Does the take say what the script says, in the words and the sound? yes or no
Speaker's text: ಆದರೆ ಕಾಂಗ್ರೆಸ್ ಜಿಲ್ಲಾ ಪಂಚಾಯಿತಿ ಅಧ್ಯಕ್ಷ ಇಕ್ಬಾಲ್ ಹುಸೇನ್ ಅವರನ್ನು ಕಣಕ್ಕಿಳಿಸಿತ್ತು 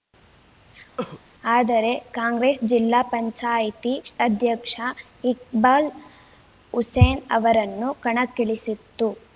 no